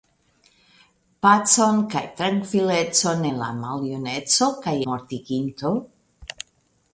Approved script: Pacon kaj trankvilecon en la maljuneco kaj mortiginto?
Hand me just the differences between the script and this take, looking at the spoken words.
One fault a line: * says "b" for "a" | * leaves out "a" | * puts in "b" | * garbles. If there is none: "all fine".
all fine